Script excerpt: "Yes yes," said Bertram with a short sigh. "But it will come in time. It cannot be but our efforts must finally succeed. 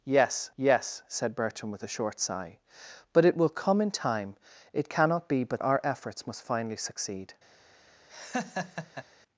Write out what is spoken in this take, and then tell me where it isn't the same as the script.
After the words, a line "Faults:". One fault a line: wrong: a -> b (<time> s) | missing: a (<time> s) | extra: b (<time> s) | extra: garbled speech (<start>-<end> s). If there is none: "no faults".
"Yes yes," said Bertram with a short sigh. "But it will come in time. It cannot be but our efforts must finally succeed.
Faults:
no faults